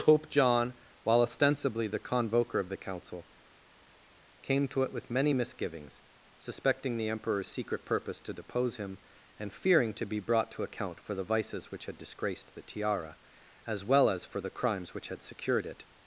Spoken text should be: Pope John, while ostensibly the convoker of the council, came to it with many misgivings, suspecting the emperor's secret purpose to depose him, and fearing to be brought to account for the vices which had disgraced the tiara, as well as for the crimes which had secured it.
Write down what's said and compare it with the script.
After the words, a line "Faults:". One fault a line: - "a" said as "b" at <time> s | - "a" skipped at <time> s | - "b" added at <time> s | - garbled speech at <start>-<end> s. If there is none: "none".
Pope John, while ostensibly the convoker of the council, came to it with many misgivings, suspecting the emperor's secret purpose to depose him, and fearing to be brought to account for the vices which had disgraced the tiara, as well as for the crimes which had secured it.
Faults:
none